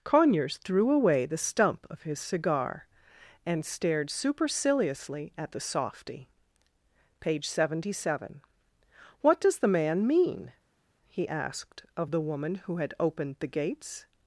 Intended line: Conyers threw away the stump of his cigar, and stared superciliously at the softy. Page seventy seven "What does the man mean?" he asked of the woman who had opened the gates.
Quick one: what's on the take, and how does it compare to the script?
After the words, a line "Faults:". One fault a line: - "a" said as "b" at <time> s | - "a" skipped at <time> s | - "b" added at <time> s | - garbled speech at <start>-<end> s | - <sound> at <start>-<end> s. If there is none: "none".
Conyers threw away the stump of his cigar, and stared superciliously at the softy. Page seventy seven "What does the man mean?" he asked of the woman who had opened the gates.
Faults:
none